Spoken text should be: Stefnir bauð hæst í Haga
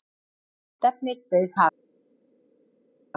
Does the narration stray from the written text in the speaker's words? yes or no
yes